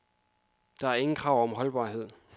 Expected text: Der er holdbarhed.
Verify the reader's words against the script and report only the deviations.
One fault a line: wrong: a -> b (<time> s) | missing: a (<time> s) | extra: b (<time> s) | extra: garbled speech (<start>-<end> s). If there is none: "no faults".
extra: ingen krav om (0.9 s)